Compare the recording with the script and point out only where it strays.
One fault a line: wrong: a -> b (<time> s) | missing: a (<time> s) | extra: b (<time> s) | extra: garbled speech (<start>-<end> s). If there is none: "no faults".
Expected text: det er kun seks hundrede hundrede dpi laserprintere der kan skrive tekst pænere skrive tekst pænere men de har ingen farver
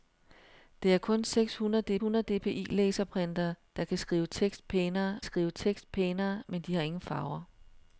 no faults